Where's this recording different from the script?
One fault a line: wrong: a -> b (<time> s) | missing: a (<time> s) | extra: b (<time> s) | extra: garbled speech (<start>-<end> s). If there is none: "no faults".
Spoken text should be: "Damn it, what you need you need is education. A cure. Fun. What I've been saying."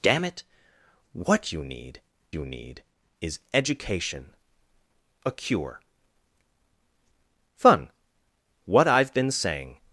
no faults